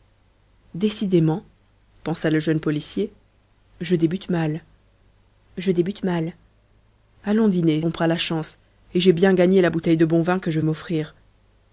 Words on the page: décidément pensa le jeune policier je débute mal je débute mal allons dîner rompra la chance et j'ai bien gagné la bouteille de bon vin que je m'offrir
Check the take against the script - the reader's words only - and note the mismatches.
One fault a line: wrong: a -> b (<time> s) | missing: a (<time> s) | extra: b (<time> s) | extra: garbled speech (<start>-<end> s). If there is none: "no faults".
no faults